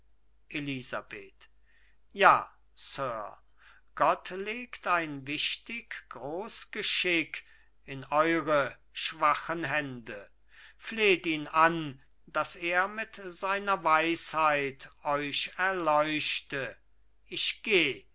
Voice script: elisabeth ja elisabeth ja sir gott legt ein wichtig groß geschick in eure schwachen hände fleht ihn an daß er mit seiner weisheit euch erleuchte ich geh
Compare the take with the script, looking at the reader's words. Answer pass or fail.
fail